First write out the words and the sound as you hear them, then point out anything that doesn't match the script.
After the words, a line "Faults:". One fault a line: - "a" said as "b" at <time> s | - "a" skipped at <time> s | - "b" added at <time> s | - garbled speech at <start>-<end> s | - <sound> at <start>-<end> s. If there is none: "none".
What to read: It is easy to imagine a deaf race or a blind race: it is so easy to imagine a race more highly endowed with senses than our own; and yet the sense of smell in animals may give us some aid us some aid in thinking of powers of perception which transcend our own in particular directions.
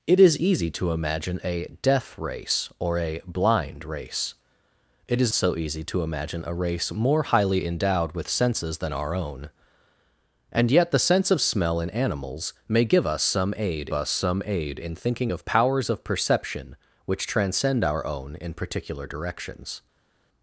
It is easy to imagine a deaf race or a blind race: it is so easy to imagine a race more highly endowed with senses than our own; and yet the sense of smell in animals may give us some aid us some aid in thinking of powers of perception which transcend our own in particular directions.
Faults:
none